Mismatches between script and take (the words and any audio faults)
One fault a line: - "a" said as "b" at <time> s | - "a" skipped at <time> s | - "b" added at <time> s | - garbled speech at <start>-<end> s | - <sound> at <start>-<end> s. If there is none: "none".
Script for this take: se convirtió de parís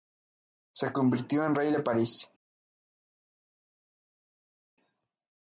- "en rey" added at 1.4 s